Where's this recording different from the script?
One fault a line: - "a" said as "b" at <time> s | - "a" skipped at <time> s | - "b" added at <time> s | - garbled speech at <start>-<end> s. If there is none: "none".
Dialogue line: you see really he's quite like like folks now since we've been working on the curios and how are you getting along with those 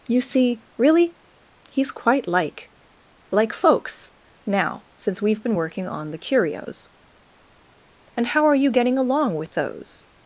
none